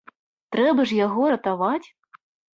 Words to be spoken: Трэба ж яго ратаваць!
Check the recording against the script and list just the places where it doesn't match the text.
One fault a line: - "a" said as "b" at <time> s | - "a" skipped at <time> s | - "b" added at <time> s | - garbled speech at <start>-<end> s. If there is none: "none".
none